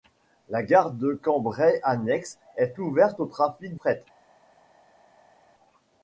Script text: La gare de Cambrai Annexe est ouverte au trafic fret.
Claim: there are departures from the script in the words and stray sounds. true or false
false